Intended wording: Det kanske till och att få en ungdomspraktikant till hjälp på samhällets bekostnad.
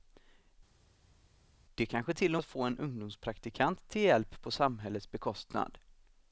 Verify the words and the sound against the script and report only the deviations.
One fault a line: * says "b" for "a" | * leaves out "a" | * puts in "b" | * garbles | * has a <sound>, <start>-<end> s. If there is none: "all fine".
all fine